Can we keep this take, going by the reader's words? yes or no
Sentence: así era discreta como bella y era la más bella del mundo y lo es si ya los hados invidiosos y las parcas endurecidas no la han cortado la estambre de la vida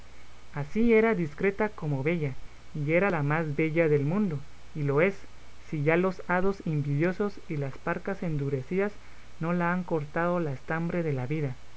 yes